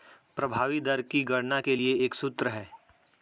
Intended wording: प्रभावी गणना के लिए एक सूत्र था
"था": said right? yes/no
no